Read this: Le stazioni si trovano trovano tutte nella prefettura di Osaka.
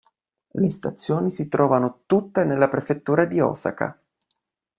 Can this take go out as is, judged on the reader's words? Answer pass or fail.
fail